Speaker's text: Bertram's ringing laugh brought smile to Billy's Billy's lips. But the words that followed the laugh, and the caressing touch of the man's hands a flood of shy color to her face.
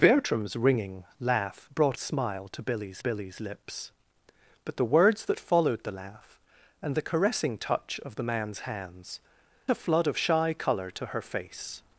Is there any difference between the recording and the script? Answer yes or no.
no